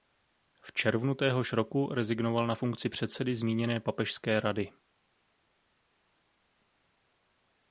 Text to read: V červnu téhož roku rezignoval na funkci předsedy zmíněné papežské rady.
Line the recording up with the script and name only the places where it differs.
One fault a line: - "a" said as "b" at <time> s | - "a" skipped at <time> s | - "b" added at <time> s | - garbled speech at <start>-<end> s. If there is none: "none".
none